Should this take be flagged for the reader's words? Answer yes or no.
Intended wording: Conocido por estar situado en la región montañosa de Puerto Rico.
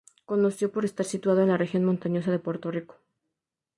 no